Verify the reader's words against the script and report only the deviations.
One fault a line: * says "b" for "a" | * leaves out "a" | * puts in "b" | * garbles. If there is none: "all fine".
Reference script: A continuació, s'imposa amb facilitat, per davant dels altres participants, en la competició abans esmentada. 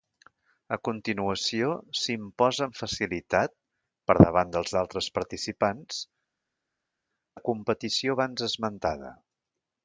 * leaves out "en"